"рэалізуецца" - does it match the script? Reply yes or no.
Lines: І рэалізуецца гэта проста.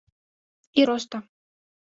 no